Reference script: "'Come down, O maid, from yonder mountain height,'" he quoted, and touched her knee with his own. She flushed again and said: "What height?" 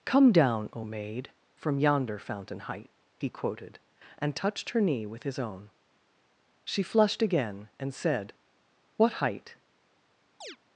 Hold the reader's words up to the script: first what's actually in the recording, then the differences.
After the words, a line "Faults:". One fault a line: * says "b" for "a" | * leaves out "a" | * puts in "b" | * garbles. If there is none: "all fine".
"'Come down, O maid, from yonder fountain height,'" he quoted, and touched her knee with his own. She flushed again and said: "What height?"
Faults:
* says "fountain" for "mountain"